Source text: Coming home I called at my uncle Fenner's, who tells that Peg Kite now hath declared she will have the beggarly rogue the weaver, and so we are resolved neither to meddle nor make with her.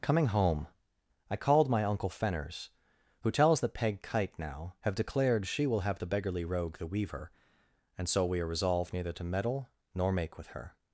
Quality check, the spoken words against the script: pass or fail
fail